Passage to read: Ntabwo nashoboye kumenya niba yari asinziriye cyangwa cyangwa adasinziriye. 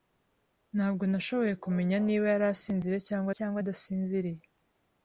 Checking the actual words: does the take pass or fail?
pass